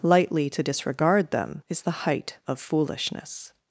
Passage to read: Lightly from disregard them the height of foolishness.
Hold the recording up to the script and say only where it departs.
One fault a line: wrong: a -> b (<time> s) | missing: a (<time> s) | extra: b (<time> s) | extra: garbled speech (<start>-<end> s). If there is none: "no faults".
wrong: from -> to (0.5 s)
extra: is (1.7 s)